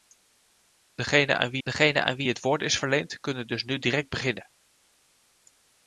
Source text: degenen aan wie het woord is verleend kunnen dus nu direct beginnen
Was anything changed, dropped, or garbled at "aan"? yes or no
no